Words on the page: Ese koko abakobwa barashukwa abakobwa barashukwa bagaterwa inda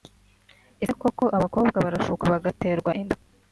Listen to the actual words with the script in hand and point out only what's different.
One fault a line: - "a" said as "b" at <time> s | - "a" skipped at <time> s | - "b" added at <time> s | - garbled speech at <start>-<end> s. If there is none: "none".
- "abakobwa barashukwa" skipped at 2.2 s